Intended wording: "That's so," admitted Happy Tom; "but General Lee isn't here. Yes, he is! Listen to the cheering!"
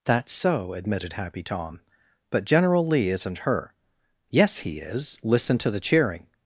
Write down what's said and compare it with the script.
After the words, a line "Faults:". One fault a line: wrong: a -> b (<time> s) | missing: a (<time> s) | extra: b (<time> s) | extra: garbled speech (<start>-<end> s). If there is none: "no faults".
"That's so," admitted Happy Tom; "but General Lee isn't her. Yes, he is! Listen to the cheering!"
Faults:
wrong: here -> her (3.4 s)